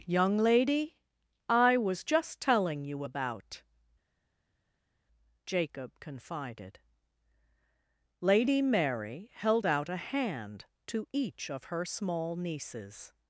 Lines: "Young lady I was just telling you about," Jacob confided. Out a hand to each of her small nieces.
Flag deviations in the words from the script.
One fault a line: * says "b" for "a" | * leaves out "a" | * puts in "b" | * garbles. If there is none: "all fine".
* puts in "Lady Mary held"